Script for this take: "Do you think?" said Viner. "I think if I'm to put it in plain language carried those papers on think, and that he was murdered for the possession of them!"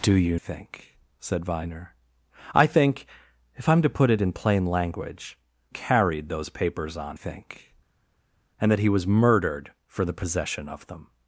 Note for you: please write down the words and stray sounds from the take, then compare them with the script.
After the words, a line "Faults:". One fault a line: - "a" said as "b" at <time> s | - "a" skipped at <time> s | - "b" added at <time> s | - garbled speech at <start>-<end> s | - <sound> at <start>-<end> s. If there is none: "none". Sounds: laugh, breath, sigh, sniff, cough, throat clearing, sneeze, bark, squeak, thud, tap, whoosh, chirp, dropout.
"Do you think?" said Viner. "I think if I'm to put it in plain language carried those papers on think, and that he was murdered for the possession of them!"
Faults:
none